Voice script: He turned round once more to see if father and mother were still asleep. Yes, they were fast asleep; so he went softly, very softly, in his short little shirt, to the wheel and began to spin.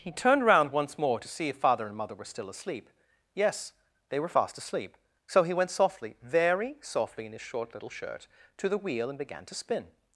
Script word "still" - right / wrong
right